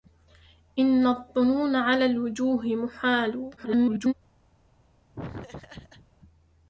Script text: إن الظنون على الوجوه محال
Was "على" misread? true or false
false